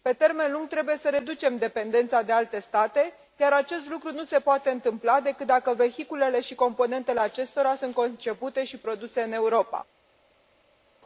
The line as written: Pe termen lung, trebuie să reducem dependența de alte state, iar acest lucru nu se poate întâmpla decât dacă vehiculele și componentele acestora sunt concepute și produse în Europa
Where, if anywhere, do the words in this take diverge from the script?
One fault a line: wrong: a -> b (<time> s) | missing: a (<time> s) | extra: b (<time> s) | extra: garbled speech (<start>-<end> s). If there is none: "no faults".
no faults